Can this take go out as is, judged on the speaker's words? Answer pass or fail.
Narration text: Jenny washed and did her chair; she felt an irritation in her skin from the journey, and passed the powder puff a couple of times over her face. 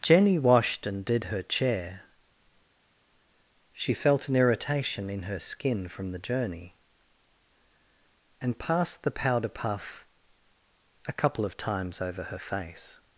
pass